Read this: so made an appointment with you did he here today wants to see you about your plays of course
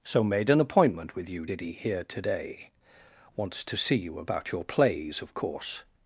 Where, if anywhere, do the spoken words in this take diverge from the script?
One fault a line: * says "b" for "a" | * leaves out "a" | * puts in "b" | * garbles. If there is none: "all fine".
all fine